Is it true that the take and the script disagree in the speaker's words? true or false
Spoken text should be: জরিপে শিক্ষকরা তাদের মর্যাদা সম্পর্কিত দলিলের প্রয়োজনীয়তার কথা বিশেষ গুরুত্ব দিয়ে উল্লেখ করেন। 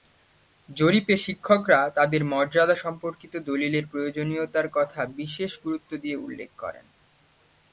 false